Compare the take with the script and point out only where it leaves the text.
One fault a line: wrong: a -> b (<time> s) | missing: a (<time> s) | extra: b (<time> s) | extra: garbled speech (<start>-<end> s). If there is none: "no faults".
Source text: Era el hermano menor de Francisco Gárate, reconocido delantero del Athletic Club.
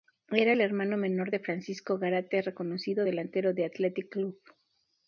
no faults